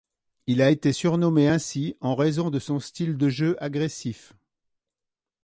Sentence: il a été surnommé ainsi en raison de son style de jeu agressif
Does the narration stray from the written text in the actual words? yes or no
no